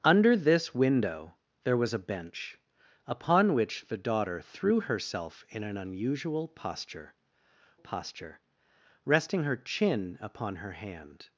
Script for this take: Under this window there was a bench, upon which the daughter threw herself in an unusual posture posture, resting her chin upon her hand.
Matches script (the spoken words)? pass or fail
pass